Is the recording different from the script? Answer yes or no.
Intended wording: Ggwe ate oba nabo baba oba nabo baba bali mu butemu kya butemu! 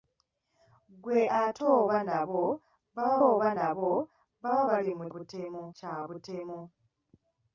no